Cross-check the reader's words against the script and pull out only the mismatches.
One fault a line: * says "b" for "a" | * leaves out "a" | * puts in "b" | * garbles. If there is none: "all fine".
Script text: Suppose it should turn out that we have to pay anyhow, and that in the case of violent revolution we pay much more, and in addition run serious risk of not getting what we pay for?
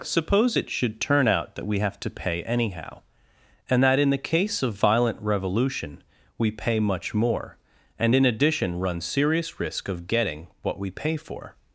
* leaves out "not"